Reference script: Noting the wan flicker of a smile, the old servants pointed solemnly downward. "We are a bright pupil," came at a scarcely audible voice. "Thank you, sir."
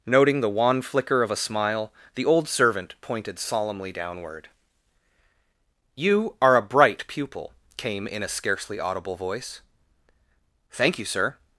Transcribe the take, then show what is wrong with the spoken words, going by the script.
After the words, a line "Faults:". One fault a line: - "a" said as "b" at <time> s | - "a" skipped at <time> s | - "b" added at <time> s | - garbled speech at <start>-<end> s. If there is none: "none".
Noting the wan flicker of a smile, the old servant pointed solemnly downward. "You are a bright pupil," came in a scarcely audible voice. "Thank you, sir."
Faults:
- "servants" said as "servant" at 2.5 s
- "We" said as "You" at 5.9 s
- "at" said as "in" at 8.1 s